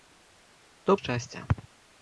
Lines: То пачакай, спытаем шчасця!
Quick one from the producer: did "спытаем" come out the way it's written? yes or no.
no